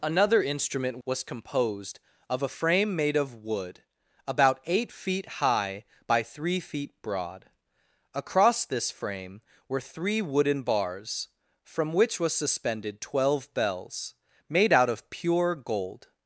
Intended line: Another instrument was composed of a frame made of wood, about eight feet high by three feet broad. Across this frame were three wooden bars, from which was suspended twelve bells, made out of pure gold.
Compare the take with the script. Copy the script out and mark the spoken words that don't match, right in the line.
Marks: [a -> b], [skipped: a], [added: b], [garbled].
Another instrument was composed of a frame made of wood, about eight feet high by three feet broad. Across this frame were three wooden bars, from which was suspended twelve bells, made out of pure gold.